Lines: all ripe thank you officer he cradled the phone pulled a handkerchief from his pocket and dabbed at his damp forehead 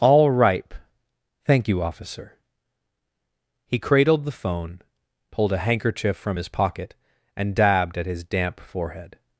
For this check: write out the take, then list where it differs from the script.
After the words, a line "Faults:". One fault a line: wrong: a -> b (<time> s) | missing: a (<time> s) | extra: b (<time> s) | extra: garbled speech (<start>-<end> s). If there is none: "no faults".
all ripe thank you officer he cradled the phone pulled a handkerchief from his pocket and dabbed at his damp forehead
Faults:
no faults